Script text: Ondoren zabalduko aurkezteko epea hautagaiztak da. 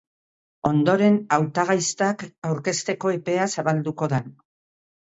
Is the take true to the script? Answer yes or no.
no